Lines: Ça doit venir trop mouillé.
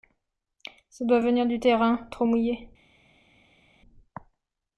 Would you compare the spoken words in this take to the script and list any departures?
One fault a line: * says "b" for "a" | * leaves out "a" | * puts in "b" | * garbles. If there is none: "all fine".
* puts in "du terrain"